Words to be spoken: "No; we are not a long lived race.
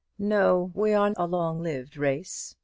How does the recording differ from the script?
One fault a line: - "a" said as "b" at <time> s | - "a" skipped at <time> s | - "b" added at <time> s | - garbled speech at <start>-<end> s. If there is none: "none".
- "not" skipped at 1.1 s